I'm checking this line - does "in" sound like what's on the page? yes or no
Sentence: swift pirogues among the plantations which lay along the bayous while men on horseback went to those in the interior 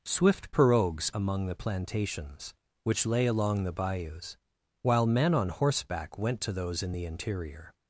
yes